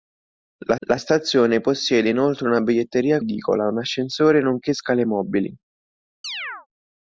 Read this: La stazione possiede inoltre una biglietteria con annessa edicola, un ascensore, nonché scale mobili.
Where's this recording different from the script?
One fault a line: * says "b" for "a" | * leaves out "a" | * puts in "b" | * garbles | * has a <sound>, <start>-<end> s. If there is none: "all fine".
* puts in "la"
* leaves out "con annessa"
* has a chirp, 6.2-6.7 s